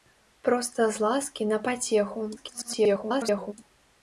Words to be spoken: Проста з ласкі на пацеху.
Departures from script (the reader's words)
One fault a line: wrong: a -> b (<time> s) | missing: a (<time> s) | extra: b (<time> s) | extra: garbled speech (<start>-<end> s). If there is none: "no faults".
extra: garbled speech (2.4-3.5 s)